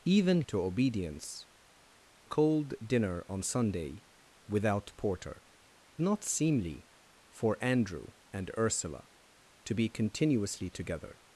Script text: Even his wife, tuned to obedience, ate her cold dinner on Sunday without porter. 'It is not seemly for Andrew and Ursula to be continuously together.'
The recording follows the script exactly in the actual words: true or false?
false